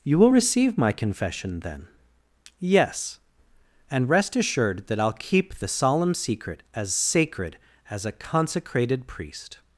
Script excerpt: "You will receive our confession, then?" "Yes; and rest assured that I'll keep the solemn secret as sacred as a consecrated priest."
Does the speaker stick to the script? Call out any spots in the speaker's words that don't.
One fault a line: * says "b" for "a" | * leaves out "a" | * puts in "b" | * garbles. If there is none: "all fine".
* says "my" for "our"